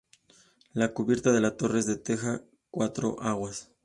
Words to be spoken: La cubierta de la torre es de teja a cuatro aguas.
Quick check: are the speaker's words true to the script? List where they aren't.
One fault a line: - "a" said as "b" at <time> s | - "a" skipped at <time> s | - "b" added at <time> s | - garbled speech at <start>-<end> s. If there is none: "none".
none